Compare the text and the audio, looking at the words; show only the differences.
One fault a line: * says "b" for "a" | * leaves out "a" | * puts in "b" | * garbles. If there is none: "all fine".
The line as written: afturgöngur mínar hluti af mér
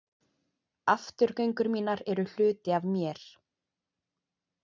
* puts in "eru"